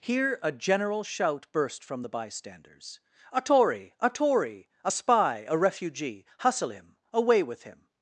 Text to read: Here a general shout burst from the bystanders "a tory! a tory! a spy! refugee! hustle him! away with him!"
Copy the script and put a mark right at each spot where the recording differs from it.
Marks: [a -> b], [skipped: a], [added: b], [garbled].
Here a general shout burst from the bystanders "a tory! a tory! a spy! [added: a] refugee! hustle him! away with him!"